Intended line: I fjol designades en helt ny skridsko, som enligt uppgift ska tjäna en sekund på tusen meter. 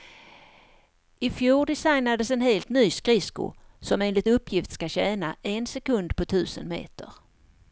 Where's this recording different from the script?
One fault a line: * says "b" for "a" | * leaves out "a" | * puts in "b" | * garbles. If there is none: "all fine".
all fine